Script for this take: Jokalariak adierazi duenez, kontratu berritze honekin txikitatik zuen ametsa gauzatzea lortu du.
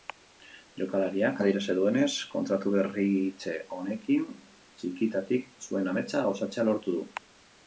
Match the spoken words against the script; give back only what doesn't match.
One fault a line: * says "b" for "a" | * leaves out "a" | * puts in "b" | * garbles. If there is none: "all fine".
all fine